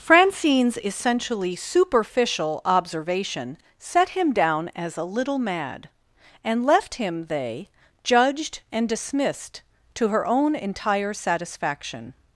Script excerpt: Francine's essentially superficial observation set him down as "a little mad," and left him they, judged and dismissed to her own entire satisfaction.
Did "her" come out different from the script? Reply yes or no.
no